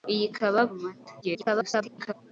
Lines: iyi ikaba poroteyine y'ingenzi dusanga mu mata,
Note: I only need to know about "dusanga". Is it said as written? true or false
false